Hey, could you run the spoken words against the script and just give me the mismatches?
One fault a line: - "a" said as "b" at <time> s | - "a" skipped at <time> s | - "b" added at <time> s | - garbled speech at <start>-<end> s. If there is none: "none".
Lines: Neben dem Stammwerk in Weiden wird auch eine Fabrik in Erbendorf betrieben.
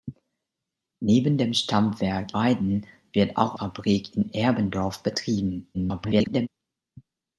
- "in" skipped at 2.4 s
- "eine" skipped at 3.6 s
- garbled speech at 5.7-6.5 s